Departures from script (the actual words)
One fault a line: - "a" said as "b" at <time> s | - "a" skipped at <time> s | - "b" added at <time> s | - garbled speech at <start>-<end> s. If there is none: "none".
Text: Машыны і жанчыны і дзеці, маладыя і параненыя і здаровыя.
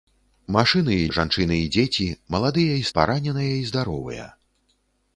none